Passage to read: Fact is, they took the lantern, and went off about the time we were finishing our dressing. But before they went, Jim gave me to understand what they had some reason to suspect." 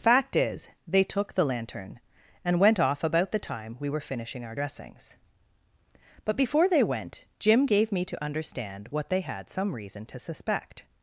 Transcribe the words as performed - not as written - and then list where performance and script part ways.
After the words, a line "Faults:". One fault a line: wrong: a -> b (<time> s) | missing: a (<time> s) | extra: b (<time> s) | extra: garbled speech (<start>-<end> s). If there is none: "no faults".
Fact is, they took the lantern, and went off about the time we were finishing our dressings. But before they went, Jim gave me to understand what they had some reason to suspect."
Faults:
wrong: dressing -> dressings (4.5 s)